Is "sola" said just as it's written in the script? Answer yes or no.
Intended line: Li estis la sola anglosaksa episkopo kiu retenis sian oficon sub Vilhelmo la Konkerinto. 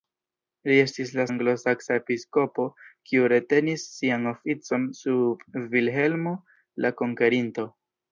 no